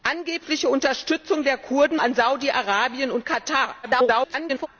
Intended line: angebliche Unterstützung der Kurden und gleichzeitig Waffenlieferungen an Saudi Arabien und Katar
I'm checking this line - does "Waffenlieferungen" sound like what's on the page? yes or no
no